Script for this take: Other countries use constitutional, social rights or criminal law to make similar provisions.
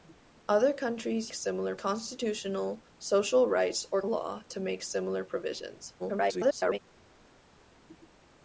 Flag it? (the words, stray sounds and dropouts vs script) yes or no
yes